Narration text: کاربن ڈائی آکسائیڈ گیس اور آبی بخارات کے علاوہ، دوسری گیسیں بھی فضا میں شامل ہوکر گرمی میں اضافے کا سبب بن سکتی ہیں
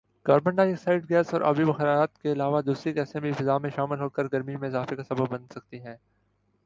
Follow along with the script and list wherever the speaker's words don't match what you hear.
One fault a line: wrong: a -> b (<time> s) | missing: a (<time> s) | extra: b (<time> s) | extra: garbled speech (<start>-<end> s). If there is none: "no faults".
no faults